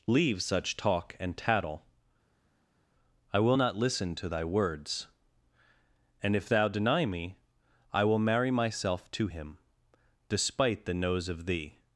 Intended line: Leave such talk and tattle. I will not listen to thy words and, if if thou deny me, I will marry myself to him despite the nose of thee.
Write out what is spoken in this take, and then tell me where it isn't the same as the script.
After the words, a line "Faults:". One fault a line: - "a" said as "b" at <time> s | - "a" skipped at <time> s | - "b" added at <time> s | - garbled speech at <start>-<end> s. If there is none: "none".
Leave such talk and tattle. I will not listen to thy words and, if thou deny me, I will marry myself to him despite the nose of thee.
Faults:
- "if" skipped at 6.5 s